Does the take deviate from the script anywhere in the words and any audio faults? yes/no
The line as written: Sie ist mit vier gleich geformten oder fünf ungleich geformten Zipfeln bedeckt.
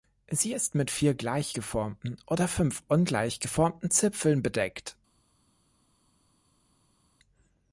no